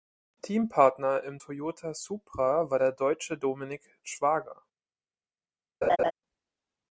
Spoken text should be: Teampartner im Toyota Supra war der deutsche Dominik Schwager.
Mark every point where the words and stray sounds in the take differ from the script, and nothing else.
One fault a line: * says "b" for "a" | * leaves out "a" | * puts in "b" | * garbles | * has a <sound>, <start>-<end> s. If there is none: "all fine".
* has a laugh, 5.8-6.1 s